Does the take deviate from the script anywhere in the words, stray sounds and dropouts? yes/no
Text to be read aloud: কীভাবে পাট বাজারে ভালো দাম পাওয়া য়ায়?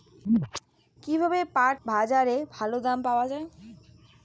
no